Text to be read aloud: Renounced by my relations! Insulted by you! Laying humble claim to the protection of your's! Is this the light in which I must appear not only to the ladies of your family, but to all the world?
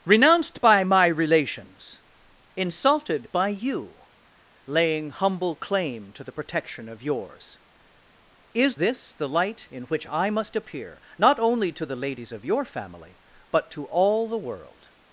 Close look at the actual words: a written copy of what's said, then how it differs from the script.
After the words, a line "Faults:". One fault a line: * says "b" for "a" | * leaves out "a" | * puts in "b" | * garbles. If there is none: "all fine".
Renounced by my relations! Insulted by you! Laying humble claim to the protection of your's! Is this the light in which I must appear not only to the ladies of your family, but to all the world?
Faults:
all fine